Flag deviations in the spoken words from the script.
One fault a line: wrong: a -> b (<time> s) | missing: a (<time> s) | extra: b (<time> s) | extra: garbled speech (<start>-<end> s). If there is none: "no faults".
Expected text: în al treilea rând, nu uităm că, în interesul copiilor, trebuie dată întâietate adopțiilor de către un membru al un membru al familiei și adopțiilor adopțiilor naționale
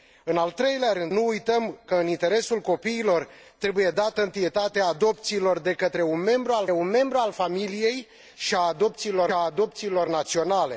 no faults